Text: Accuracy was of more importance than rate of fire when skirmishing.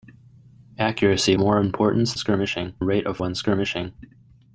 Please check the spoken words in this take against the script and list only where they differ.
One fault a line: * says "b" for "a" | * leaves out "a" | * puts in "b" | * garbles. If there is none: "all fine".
* leaves out "was of"
* says "skirmishing" for "than"
* leaves out "fire"